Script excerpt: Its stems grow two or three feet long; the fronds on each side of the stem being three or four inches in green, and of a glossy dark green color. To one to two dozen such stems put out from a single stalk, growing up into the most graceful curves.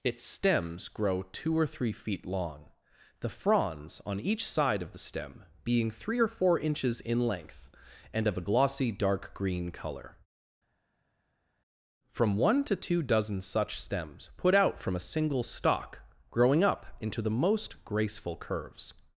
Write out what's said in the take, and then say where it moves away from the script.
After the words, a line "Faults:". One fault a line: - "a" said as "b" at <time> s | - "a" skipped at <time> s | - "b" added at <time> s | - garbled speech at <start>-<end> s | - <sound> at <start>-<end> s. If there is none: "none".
Its stems grow two or three feet long; the fronds on each side of the stem being three or four inches in length, and of a glossy dark green color. From one to two dozen such stems put out from a single stalk, growing up into the most graceful curves.
Faults:
- "green" said as "length" at 7.3 s
- "To" said as "From" at 12.1 s